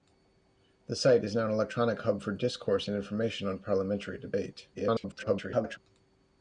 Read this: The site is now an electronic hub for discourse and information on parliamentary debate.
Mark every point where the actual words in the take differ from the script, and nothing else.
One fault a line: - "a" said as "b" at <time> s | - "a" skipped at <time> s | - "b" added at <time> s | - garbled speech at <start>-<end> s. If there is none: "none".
- garbled speech at 4.7-5.8 s